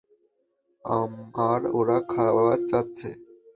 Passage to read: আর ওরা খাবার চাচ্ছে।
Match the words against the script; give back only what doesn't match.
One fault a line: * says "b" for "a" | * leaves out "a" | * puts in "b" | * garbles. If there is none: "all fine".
all fine